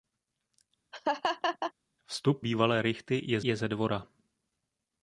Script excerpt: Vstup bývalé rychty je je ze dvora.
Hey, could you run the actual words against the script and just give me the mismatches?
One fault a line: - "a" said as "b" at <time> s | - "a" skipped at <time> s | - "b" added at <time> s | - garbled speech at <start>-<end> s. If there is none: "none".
none